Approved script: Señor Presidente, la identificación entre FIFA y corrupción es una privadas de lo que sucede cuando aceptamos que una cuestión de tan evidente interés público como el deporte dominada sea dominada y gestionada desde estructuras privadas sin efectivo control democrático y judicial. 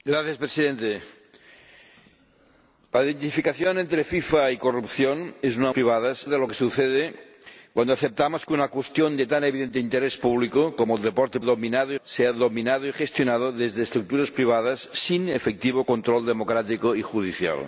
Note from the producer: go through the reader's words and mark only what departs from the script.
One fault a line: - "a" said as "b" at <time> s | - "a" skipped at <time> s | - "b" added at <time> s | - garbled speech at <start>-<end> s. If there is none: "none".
none